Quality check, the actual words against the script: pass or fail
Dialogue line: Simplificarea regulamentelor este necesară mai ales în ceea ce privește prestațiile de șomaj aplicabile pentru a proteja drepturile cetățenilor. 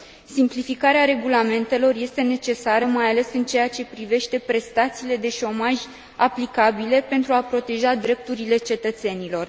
pass